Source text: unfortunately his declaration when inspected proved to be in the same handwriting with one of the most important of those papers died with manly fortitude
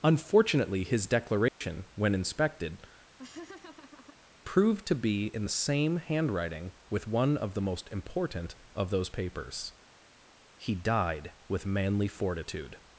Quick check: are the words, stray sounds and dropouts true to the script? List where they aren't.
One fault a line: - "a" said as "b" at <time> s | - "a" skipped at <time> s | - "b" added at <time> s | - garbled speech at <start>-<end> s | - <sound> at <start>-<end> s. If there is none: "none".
- dropout at 1.5-1.6 s
- laugh at 3.2-4.2 s
- "he" added at 10.6 s